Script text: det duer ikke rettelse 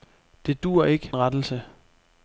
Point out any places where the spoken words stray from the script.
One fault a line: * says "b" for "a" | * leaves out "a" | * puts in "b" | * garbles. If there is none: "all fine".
all fine